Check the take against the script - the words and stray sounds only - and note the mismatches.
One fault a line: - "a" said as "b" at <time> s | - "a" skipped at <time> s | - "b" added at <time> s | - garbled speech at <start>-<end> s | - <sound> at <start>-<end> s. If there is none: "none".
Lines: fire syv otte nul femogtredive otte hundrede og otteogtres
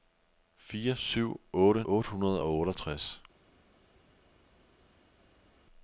- "nul femogtredive" skipped at 1.8 s